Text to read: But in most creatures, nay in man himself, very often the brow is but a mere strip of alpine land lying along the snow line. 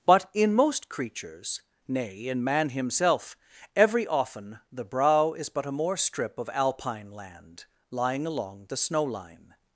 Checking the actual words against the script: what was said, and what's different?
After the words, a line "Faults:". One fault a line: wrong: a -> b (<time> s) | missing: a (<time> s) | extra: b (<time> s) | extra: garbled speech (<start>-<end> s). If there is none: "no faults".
But in most creatures, nay in man himself, every often the brow is but a more strip of alpine land lying along the snow line.
Faults:
wrong: very -> every (3.8 s)
wrong: mere -> more (5.7 s)